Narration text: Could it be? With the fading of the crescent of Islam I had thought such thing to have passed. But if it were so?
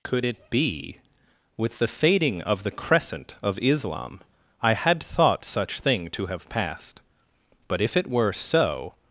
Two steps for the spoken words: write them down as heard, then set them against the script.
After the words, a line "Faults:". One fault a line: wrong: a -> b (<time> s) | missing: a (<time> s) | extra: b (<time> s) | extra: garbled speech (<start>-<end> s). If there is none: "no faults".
Could it be? With the fading of the crescent of Islam I had thought such thing to have passed. But if it were so?
Faults:
no faults